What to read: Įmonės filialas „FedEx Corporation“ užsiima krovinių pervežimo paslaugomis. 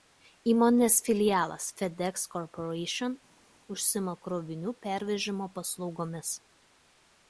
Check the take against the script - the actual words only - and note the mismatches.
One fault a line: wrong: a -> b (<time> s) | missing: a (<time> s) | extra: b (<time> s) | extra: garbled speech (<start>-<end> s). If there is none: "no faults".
no faults